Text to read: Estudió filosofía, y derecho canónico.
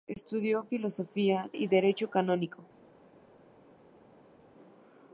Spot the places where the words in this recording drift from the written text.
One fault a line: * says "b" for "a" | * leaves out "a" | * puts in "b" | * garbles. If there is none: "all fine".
all fine